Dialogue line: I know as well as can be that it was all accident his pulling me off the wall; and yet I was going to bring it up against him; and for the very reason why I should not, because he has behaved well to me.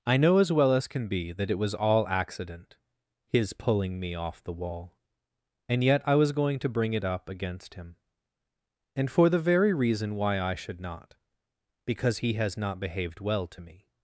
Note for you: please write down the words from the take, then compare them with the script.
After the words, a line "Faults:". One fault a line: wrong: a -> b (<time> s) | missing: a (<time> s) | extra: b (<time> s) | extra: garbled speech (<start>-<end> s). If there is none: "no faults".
I know as well as can be that it was all accident his pulling me off the wall; and yet I was going to bring it up against him; and for the very reason why I should not, because he has not behaved well to me.
Faults:
extra: not (12.6 s)